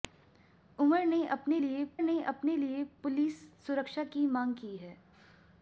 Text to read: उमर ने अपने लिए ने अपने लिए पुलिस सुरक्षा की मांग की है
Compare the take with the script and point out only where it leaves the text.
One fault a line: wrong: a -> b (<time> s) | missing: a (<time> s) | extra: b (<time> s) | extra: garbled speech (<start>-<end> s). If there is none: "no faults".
no faults